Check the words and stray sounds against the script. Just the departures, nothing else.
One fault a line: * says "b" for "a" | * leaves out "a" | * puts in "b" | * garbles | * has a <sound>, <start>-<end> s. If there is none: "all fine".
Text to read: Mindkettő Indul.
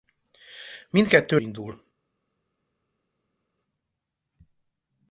all fine